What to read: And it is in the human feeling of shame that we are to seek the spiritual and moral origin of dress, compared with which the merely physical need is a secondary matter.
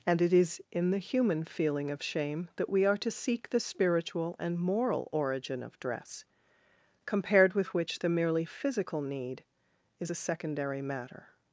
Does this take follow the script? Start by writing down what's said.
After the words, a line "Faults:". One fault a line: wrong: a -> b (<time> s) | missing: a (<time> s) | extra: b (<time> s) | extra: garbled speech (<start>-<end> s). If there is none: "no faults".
And it is in the human feeling of shame that we are to seek the spiritual and moral origin of dress, compared with which the merely physical need is a secondary matter.
Faults:
no faults